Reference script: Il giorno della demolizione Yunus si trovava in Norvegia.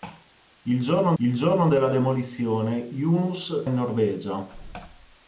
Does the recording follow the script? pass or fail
fail